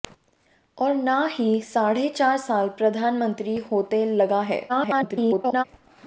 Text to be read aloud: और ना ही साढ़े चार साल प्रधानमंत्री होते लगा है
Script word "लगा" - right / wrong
right